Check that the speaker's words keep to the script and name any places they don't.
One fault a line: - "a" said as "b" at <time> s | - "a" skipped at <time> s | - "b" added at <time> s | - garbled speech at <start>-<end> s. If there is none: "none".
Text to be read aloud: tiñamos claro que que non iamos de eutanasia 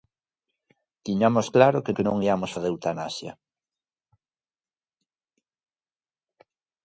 none